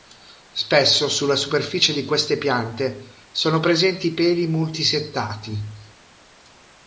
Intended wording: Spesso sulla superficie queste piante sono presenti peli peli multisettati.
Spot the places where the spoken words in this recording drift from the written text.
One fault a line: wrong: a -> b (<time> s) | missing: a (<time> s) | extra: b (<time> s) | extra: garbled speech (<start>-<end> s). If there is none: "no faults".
extra: di (1.9 s)
missing: peli (4.5 s)